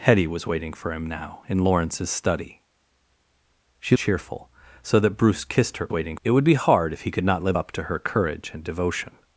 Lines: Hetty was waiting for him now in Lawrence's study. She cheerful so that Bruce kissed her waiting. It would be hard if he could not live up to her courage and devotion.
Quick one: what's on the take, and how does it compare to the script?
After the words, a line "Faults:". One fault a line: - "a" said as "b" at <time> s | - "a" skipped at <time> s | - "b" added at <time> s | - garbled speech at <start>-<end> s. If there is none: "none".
Hetty was waiting for him now in Lawrence's study. She cheerful so that Bruce kissed her waiting. It would be hard if he could not live up to her courage and devotion.
Faults:
none